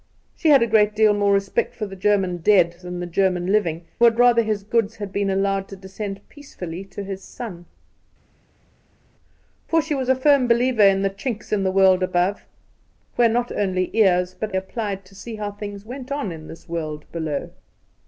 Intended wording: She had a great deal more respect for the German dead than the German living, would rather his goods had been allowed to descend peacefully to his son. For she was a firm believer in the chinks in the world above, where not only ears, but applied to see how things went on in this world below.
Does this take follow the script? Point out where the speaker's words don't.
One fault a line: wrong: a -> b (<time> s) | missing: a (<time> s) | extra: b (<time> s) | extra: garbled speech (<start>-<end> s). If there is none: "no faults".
no faults